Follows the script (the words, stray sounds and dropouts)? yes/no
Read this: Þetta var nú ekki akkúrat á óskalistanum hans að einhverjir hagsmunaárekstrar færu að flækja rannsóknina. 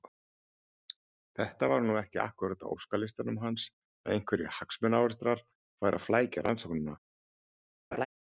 no